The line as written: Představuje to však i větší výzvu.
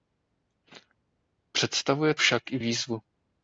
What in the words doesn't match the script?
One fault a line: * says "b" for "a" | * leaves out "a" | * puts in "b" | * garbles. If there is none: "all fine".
* leaves out "to"
* leaves out "větší"